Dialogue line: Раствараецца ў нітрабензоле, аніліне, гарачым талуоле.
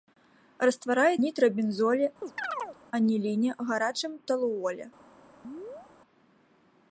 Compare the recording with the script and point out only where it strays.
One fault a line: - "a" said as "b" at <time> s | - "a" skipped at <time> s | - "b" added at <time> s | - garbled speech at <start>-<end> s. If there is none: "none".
- "ў" skipped at 1.2 s